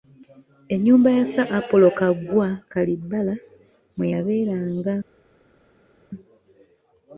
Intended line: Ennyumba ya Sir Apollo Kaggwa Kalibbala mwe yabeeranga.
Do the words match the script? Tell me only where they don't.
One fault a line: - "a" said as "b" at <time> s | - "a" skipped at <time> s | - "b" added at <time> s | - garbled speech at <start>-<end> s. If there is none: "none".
none